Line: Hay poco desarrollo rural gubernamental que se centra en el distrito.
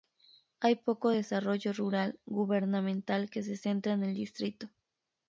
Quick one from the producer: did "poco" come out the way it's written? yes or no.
yes